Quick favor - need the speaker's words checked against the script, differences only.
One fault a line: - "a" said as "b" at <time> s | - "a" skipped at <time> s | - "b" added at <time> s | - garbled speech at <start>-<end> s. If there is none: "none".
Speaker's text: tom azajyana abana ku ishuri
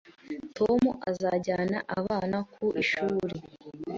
none